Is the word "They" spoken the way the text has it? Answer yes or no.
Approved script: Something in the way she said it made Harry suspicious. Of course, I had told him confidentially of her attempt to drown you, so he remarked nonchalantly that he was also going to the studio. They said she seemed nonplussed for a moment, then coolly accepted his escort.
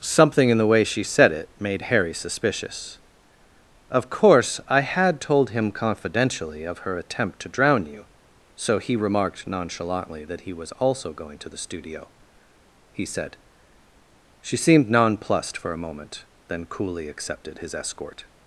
no